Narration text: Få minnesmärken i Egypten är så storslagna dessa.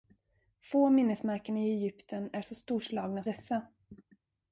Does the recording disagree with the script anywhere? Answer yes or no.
no